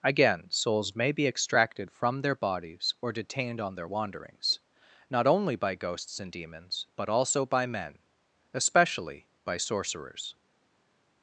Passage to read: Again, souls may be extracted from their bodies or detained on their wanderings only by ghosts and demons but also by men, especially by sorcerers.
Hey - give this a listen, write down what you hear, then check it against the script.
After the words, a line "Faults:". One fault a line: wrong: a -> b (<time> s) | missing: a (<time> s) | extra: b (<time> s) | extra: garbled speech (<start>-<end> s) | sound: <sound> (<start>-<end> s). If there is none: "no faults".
Again, souls may be extracted from their bodies or detained on their wanderings not only by ghosts and demons but also by men, especially by sorcerers.
Faults:
extra: not (5.1 s)